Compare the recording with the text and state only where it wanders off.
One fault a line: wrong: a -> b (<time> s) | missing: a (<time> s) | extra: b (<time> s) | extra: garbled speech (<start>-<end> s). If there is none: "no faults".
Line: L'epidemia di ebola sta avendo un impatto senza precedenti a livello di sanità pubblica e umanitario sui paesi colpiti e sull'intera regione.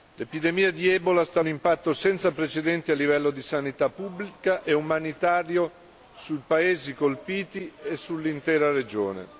missing: avendo (1.4 s)